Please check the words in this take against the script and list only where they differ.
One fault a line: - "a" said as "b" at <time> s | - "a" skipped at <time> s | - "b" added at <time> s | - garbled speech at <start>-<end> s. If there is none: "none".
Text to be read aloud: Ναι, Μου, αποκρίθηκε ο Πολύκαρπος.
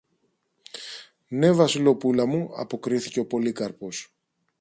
- "Βασιλοπούλα" added at 1.5 s